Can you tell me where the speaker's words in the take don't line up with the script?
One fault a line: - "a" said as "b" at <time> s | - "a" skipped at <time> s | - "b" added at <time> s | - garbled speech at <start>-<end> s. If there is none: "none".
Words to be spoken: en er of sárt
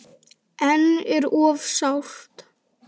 none